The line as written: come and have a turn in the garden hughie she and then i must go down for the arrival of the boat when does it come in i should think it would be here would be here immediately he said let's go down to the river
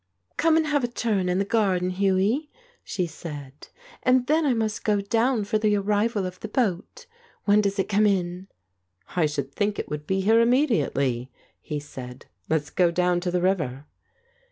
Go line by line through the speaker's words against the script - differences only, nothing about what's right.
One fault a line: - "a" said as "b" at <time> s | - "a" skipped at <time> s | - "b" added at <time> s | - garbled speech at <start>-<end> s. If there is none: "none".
- "said" added at 3.0 s
- "would be here" skipped at 10.4 s